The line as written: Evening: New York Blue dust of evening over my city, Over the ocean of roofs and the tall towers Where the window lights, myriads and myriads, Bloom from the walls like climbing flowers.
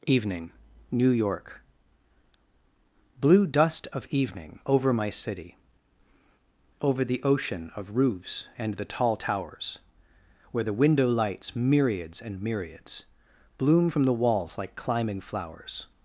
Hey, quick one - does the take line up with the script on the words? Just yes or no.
yes